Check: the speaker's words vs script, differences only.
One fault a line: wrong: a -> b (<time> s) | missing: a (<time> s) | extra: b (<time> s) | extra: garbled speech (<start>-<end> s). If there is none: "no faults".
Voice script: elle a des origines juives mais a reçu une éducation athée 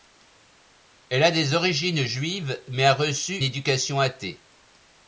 missing: une (3.4 s)